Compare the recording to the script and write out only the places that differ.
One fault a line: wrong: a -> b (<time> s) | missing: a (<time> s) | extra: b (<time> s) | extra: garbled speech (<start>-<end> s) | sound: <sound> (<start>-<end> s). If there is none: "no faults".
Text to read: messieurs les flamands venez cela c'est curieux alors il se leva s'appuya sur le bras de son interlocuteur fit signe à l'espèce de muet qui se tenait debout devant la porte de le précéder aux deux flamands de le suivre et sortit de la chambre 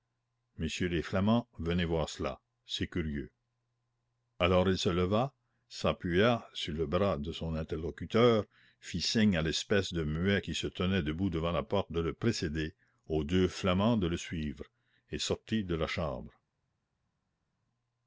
extra: voir (1.9 s)